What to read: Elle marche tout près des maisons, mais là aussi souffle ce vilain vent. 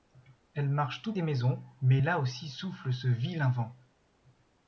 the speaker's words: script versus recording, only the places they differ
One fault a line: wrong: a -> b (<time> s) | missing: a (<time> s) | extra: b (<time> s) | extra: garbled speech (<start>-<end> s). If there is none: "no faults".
missing: près (1.1 s)